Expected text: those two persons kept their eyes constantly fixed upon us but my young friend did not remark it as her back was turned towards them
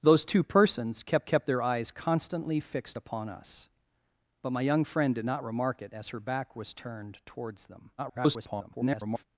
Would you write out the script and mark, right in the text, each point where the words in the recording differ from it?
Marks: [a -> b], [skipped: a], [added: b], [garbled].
those two persons kept [added: kept] their eyes constantly fixed upon us but my young friend did not remark it as her back was turned towards them [garbled]